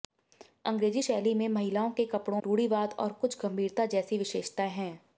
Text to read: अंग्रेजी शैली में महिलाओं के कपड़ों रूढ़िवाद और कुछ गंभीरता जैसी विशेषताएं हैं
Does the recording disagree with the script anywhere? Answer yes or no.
no